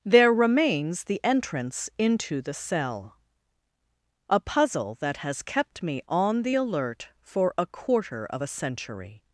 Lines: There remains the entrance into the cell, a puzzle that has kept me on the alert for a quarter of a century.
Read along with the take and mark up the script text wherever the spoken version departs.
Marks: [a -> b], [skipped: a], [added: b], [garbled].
There remains the entrance into the cell, a puzzle that has kept me on the alert for a quarter of a century.